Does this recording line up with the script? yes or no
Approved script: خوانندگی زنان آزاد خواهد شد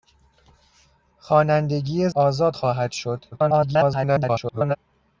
no